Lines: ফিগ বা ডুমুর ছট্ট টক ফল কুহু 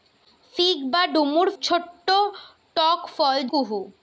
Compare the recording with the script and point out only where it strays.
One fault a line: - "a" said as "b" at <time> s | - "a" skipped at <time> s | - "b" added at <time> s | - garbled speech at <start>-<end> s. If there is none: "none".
none